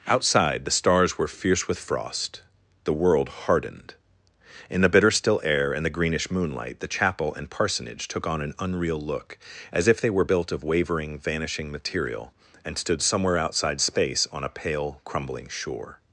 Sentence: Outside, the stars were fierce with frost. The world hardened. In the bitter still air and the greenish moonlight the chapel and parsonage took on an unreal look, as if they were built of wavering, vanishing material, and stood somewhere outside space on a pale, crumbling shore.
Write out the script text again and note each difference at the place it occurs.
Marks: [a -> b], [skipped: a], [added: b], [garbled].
Outside, the stars were fierce with frost. The world hardened. In the bitter still air and the greenish moonlight the chapel and parsonage took on an unreal look, as if they were built of wavering, vanishing material, and stood somewhere outside space on a pale, crumbling shore.